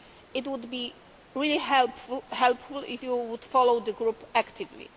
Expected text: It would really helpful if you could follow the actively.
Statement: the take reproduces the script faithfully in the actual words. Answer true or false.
false